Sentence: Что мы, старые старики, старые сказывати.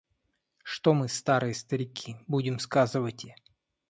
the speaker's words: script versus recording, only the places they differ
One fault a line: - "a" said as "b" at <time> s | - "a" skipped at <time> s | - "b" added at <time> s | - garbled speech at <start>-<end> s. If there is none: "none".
- "старые" said as "будем" at 2.3 s